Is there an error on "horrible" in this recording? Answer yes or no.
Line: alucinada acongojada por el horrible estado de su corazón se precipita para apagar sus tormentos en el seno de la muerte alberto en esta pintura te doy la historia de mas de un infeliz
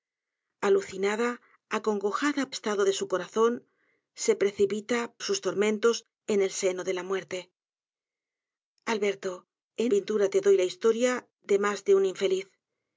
yes